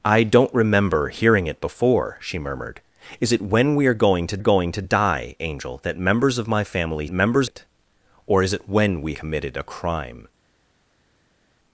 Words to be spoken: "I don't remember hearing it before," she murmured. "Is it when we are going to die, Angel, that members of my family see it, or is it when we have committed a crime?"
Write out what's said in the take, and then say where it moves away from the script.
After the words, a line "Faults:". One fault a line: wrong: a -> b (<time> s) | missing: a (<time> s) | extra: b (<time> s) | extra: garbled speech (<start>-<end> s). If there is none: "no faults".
"I don't remember hearing it before," she murmured. "Is it when we are going to going to die, Angel, that members of my family members it, or is it when we committed a crime?"
Faults:
extra: going to (4.4 s)
wrong: see -> members (7.1 s)
missing: have (9.1 s)